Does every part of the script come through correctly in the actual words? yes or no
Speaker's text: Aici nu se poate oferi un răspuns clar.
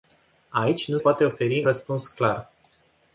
no